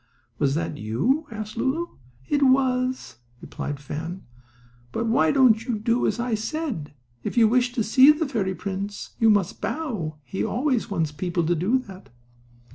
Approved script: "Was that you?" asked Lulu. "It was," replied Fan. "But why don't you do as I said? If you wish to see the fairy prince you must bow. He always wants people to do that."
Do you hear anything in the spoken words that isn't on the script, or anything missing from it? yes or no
no